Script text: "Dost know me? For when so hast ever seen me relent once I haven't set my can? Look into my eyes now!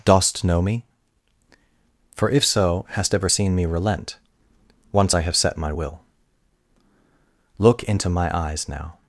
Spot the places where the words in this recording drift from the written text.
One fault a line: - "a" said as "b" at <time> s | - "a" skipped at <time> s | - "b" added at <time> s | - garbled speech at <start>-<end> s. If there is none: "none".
- "when" said as "if" at 2.3 s
- "haven't" said as "have" at 5.2 s
- "can" said as "will" at 5.7 s